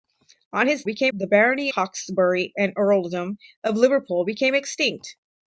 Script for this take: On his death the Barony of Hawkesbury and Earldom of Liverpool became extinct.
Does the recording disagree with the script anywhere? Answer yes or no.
yes